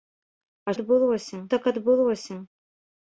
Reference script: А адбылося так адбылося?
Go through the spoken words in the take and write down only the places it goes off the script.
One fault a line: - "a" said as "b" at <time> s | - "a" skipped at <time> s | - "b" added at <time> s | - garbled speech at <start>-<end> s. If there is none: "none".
none